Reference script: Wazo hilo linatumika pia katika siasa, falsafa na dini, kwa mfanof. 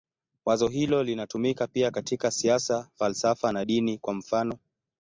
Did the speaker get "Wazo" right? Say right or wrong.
right